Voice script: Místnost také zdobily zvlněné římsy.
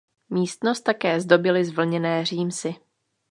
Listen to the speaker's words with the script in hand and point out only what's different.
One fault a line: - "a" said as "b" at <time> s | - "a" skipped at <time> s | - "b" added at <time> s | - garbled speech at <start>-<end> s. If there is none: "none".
none